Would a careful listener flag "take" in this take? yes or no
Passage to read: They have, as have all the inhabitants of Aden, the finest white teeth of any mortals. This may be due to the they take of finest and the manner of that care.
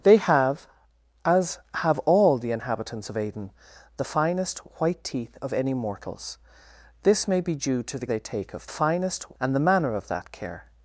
no